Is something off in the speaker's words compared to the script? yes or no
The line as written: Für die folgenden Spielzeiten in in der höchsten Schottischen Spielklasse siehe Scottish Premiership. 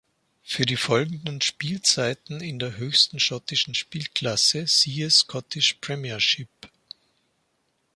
yes